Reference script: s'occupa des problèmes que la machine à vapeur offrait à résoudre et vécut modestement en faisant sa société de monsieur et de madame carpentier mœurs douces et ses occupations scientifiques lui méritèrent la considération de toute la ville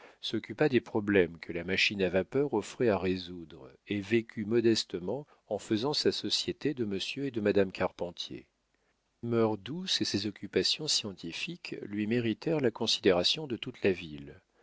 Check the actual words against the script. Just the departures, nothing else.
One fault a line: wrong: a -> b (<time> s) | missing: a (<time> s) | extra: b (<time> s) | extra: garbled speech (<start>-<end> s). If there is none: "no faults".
no faults